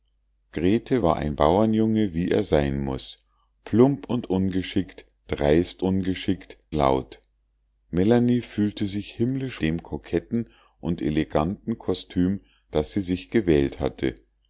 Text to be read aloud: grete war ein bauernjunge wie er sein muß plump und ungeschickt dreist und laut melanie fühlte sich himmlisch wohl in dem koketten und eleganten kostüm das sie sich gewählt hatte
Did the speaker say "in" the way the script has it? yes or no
no